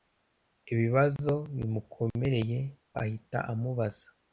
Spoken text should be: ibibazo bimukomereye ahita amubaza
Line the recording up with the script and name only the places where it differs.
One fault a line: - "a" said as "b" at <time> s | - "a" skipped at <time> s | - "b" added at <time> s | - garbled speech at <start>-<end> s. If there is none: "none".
none